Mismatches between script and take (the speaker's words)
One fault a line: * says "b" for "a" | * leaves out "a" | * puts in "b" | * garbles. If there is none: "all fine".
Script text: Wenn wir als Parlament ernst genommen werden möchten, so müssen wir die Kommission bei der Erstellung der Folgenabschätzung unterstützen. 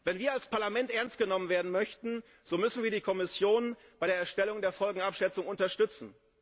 all fine